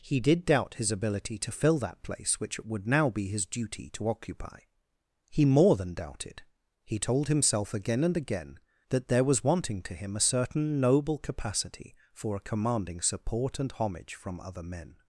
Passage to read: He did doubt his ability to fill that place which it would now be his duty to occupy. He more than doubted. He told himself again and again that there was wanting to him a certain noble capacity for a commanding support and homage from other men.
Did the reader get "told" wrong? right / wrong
right